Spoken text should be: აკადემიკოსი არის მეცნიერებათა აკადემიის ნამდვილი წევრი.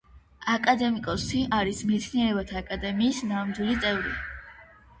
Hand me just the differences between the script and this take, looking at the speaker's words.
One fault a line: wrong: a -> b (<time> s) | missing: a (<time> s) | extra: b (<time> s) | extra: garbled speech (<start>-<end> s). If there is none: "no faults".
no faults